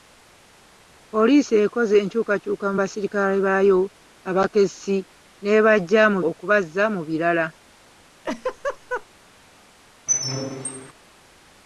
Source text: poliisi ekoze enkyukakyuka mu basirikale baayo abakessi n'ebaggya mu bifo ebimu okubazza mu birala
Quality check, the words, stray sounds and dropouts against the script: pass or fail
fail